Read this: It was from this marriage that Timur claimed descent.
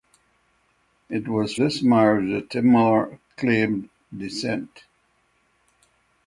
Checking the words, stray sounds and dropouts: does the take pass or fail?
fail